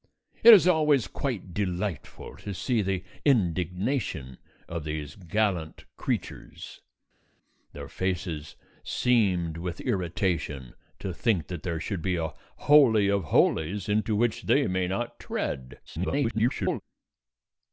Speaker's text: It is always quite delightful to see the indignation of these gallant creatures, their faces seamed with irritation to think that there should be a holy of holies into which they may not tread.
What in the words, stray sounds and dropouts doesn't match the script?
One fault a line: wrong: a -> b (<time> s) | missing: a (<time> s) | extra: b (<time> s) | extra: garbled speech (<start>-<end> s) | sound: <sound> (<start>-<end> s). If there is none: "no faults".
extra: garbled speech (15.9-16.8 s)